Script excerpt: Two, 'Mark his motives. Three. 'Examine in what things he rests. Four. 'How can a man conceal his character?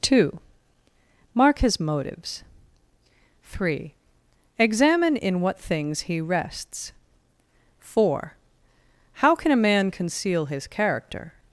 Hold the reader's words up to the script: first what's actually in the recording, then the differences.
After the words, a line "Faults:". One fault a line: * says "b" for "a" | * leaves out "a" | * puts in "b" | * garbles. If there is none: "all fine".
Two, 'Mark his motives. Three. 'Examine in what things he rests. Four. 'How can a man conceal his character?
Faults:
all fine